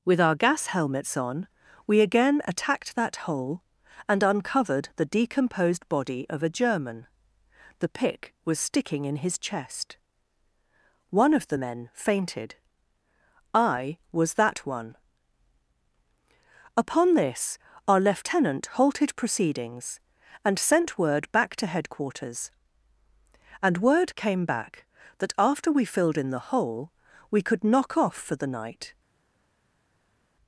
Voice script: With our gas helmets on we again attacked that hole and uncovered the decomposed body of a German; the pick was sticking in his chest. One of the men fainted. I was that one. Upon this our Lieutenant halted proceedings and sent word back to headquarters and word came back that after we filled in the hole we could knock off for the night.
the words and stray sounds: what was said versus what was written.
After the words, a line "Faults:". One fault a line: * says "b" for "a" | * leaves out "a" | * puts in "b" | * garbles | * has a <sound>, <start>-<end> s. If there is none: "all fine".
With our gas helmets on we again attacked that hole and uncovered the decomposed body of a German; the pick was sticking in his chest. One of the men fainted. I was that one. Upon this our Lieutenant halted proceedings and sent word back to headquarters and word came back that after we filled in the hole we could knock off for the night.
Faults:
all fine